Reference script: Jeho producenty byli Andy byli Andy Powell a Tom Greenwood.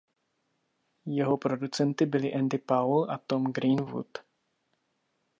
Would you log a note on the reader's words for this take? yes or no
yes